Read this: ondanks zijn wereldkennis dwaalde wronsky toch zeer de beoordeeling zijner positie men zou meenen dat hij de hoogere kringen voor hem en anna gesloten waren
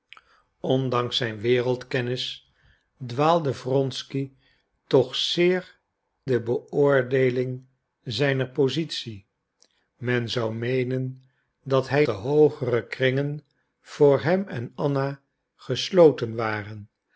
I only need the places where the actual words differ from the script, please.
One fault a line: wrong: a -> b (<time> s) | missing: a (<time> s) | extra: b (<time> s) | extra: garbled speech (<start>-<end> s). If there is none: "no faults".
no faults